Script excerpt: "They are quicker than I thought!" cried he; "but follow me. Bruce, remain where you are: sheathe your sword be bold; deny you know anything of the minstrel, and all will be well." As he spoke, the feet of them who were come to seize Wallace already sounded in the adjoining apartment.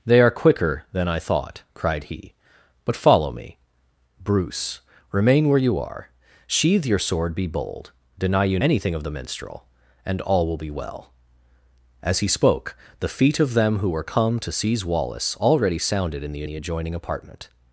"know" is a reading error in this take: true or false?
true